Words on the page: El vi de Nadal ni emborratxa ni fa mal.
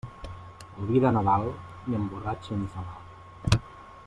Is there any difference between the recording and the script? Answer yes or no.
no